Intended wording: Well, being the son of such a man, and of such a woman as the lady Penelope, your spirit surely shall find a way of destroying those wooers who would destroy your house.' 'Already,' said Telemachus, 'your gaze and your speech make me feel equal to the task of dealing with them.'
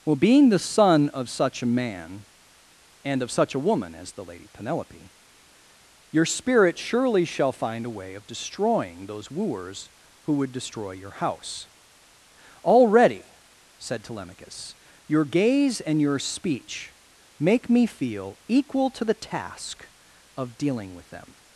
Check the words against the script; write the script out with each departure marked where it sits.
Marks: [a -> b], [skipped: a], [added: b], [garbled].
Well, being the son of such a man, and of such a woman as the lady Penelope, your spirit surely shall find a way of destroying those wooers who would destroy your house.' 'Already,' said Telemachus, 'your gaze and your speech make me feel equal to the task of dealing with them.'